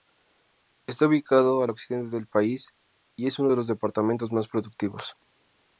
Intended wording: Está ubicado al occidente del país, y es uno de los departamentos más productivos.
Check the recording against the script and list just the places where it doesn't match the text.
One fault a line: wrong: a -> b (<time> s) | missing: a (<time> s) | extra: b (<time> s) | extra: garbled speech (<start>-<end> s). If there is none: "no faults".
no faults